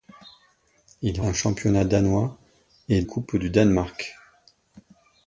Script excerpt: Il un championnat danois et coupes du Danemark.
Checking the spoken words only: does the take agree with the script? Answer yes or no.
yes